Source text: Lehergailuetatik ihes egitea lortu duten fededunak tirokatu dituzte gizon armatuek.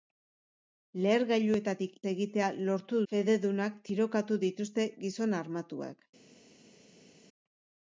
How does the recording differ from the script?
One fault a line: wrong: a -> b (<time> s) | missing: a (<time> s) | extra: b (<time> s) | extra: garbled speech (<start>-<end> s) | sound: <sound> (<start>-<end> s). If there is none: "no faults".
missing: ihes (2.0 s)
missing: duten (3.0 s)